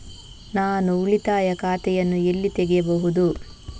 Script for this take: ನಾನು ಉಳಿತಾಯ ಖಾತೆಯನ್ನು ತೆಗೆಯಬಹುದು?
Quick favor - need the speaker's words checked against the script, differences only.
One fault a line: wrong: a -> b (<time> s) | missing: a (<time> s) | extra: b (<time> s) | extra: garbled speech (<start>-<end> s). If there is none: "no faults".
extra: ಎಲ್ಲಿ (2.2 s)